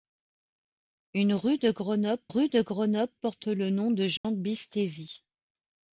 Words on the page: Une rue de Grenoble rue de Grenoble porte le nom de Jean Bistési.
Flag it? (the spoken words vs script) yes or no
no